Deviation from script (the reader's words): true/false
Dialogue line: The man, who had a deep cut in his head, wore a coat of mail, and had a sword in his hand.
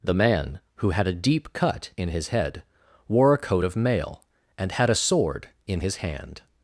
false